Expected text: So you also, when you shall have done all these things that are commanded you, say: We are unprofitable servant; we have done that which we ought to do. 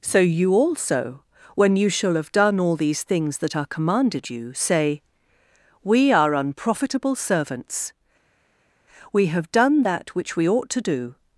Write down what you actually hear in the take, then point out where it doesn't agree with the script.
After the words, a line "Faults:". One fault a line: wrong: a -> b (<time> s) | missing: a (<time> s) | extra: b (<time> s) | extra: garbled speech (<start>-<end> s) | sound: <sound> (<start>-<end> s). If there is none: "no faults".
So you also, when you shall have done all these things that are commanded you, say: We are unprofitable servants; we have done that which we ought to do.
Faults:
wrong: servant -> servants (7.1 s)